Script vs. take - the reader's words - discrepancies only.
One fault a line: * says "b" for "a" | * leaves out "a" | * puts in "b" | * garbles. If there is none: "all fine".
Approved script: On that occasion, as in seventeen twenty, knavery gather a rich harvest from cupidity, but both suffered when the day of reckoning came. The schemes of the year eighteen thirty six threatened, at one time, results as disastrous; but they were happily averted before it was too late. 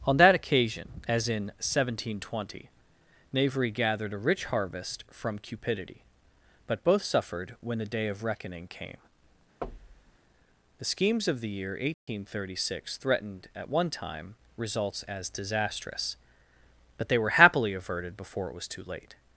* says "gathered" for "gather"